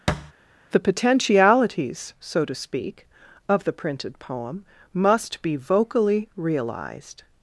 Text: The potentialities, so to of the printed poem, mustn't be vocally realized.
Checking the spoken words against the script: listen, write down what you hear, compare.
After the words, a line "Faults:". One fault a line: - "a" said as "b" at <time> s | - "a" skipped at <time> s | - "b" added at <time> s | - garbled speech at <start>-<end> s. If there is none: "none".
The potentialities, so to speak, of the printed poem, must be vocally realized.
Faults:
- "speak" added at 2.5 s
- "mustn't" said as "must" at 4.9 s